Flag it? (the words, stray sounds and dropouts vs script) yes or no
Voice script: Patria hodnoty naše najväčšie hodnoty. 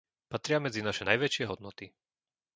yes